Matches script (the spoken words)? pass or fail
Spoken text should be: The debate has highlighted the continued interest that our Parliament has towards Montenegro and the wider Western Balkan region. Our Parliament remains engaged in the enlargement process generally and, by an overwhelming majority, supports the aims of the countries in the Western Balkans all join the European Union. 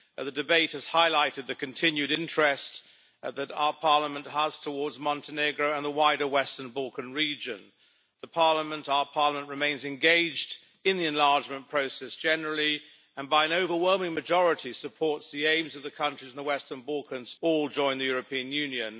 pass